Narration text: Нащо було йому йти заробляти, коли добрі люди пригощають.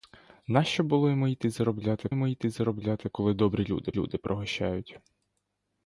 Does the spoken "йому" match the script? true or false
true